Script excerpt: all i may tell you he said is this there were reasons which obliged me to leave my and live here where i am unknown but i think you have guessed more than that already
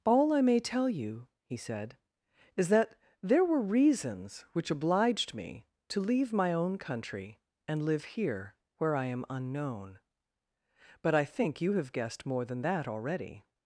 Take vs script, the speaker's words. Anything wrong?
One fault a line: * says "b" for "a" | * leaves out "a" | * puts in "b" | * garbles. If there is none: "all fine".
* says "that" for "this"
* puts in "own country"